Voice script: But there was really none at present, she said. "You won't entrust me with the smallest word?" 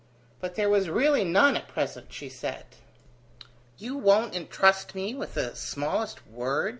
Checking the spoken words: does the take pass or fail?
pass